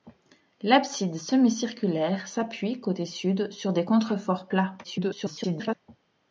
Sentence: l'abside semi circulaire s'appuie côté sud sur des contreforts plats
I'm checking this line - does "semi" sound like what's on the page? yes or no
yes